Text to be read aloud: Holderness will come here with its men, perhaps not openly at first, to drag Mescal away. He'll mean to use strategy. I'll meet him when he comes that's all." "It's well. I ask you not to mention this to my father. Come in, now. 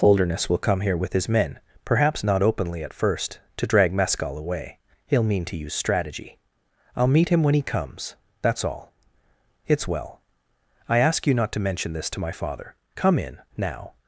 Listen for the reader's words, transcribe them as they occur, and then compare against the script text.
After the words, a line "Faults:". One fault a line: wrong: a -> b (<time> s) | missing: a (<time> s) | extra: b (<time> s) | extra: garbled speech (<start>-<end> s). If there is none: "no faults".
Holderness will come here with his men, perhaps not openly at first, to drag Mescal away. He'll mean to use strategy. I'll meet him when he comes that's all." "It's well. I ask you not to mention this to my father. Come in, now.
Faults:
wrong: its -> his (1.1 s)